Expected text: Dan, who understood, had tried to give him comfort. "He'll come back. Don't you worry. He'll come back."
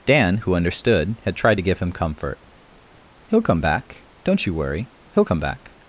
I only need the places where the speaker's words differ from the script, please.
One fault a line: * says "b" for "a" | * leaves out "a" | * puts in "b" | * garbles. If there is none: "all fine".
all fine